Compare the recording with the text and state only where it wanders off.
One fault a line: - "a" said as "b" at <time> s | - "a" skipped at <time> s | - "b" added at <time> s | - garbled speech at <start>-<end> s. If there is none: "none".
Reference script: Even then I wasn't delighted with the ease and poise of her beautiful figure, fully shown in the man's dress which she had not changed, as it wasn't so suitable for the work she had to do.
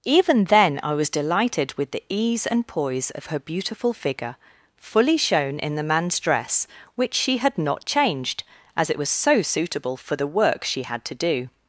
- "wasn't" said as "was" at 0.9 s
- "wasn't" said as "was" at 9.0 s